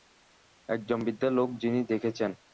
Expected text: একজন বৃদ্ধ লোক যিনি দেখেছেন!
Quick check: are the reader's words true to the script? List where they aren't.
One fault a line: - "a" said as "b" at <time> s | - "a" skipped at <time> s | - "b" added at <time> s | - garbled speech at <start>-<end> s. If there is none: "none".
none